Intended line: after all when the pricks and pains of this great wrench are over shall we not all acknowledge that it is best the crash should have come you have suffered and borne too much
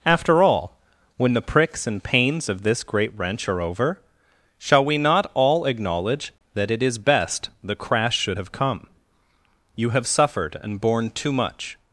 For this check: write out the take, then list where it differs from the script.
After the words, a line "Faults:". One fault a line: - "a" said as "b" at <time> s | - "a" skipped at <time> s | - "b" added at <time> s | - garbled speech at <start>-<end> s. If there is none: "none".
after all when the pricks and pains of this great wrench are over shall we not all acknowledge that it is best the crash should have come you have suffered and borne too much
Faults:
none